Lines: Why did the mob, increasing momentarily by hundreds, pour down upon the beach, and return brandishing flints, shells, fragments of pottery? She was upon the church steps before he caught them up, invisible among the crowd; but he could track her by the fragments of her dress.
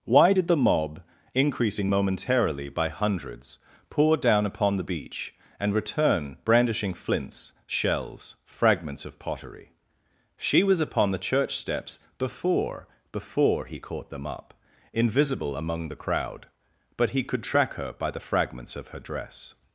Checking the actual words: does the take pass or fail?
fail